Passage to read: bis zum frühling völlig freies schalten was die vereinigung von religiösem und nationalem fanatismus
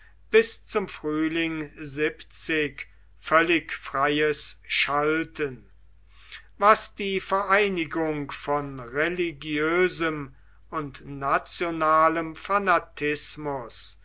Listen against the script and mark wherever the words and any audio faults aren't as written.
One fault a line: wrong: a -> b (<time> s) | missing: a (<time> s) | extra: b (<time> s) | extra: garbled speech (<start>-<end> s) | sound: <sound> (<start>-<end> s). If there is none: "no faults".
no faults